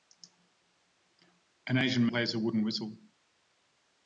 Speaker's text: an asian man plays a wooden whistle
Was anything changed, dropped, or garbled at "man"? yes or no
yes